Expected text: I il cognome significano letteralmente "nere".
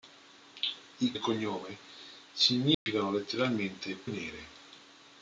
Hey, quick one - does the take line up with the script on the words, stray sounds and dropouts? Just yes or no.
no